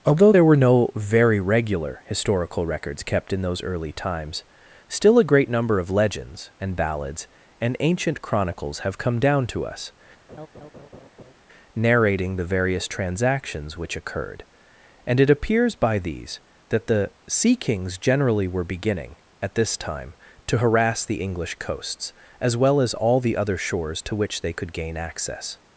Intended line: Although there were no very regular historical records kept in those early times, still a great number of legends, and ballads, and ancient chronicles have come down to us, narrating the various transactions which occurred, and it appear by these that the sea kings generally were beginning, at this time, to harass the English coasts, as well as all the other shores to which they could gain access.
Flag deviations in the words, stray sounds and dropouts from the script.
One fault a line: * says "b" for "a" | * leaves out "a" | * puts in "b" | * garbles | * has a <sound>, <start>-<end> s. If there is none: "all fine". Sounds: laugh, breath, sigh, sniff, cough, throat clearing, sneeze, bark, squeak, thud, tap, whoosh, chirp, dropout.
* has a laugh, 10.3-11.3 s
* says "appears" for "appear"